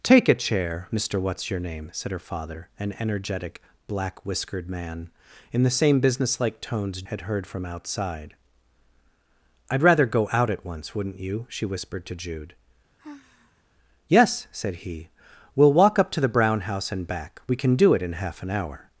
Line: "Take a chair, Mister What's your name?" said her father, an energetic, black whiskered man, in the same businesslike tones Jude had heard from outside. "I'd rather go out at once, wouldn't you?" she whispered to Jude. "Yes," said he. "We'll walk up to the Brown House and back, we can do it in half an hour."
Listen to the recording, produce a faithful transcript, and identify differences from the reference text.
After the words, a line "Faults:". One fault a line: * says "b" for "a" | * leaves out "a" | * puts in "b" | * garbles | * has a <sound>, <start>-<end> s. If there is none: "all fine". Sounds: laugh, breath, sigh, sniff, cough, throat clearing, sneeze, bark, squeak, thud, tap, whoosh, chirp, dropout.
"Take a chair, Mister What's your name?" said her father, an energetic, black whiskered man, in the same businesslike tones Had heard from outside. "I'd rather go out at once, wouldn't you?" she whispered to Jude. "Yes," said he. "We'll walk up to the Brown House and back, we can do it in half an hour."
Faults:
* leaves out "Jude"
* has a sigh, 13.0-13.6 s